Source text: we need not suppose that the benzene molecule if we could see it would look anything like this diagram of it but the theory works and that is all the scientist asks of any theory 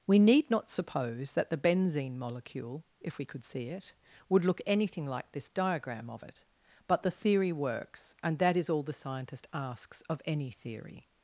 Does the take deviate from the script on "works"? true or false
false